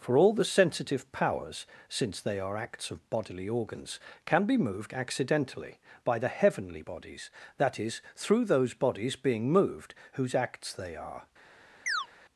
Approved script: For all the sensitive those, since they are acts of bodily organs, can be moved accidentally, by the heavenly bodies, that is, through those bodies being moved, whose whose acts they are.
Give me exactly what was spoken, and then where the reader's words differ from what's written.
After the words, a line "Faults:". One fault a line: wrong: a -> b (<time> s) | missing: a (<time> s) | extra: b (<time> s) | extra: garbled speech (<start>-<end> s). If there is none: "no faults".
For all the sensitive powers, since they are acts of bodily organs, can be moved accidentally, by the heavenly bodies, that is, through those bodies being moved, whose acts they are.
Faults:
wrong: those -> powers (1.1 s)
missing: whose (10.3 s)